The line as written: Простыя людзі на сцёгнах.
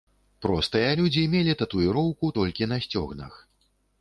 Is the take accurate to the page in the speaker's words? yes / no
no